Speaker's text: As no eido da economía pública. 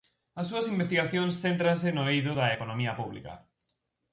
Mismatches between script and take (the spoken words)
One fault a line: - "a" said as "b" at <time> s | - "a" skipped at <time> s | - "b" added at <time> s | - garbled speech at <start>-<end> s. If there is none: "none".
- "súas investigacións céntranse" added at 0.5 s